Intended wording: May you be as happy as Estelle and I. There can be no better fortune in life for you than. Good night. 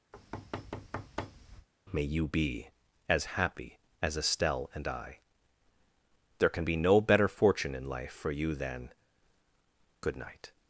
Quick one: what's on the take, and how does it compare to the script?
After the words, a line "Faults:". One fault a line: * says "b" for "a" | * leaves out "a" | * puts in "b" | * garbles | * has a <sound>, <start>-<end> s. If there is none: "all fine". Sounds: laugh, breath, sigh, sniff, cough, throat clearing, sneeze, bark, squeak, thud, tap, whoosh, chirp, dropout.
May you be as happy as Estelle and I. There can be no better fortune in life for you than. Good night.
Faults:
* has a thud, 0.1-1.7 s